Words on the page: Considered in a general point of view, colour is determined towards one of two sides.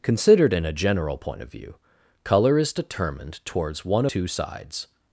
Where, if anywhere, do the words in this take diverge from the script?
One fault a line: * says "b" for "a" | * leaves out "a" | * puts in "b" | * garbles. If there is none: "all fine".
* leaves out "of"